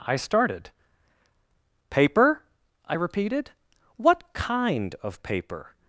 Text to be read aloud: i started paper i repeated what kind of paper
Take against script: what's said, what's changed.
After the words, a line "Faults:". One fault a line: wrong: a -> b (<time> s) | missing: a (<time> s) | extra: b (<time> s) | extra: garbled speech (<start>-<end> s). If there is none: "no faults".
i started paper i repeated what kind of paper
Faults:
no faults